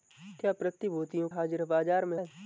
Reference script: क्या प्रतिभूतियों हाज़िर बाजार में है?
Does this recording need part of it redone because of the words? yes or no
no